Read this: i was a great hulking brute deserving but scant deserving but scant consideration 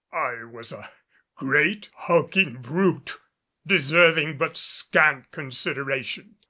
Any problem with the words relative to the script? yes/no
yes